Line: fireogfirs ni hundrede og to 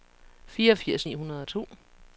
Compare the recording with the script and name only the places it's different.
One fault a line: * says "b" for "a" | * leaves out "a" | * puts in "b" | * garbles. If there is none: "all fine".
all fine